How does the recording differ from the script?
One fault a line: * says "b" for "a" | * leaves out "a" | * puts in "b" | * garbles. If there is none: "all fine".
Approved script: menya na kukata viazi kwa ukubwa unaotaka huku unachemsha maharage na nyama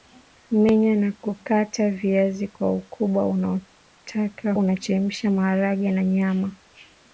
* leaves out "huku"